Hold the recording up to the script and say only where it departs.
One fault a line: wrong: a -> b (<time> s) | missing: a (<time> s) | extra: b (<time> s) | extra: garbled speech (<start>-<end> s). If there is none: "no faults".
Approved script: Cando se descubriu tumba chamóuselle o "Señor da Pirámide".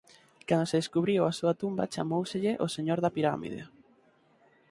extra: a súa (1.2 s)